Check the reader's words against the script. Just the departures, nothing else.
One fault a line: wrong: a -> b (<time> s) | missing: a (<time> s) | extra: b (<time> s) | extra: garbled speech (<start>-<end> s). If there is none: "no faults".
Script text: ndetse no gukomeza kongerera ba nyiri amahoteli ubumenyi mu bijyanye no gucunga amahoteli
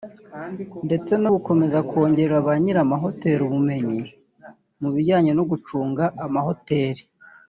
no faults